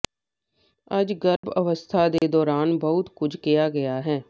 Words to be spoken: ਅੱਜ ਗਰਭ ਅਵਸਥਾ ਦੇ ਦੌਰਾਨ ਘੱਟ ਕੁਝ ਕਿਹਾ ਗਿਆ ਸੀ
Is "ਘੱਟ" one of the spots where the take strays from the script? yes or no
yes